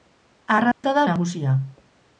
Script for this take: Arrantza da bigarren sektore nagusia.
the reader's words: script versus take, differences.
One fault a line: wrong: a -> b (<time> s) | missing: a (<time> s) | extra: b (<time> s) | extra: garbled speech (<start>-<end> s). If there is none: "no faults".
missing: bigarren sektore (1.0 s)